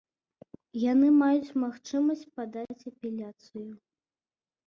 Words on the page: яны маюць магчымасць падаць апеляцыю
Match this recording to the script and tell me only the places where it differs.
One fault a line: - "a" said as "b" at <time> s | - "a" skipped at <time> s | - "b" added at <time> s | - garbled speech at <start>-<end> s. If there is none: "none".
none